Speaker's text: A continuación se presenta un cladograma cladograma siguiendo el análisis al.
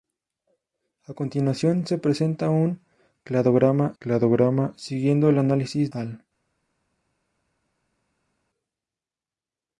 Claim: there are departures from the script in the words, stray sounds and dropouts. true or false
false